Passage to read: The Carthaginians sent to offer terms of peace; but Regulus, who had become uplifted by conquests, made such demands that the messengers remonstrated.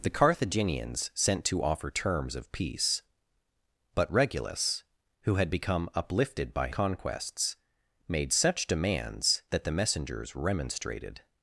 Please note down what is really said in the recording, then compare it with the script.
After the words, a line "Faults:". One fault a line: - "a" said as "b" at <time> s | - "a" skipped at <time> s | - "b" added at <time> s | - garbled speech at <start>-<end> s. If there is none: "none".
The Carthaginians sent to offer terms of peace; but Regulus, who had become uplifted by conquests, made such demands that the messengers remonstrated.
Faults:
none